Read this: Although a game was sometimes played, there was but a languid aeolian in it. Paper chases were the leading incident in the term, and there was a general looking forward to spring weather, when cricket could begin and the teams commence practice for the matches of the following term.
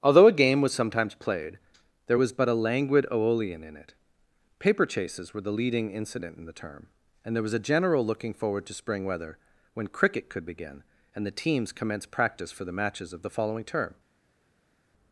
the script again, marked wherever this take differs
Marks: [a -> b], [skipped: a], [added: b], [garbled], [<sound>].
Although a game was sometimes played, there was but a languid aeolian in it. Paper chases were the leading incident in the term, and there was a general looking forward to spring weather, when cricket could begin and the teams commence practice for the matches of the following term.